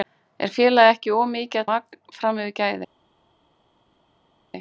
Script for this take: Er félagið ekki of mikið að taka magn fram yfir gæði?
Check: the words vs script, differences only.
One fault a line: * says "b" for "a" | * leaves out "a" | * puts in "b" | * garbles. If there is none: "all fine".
* leaves out "taka"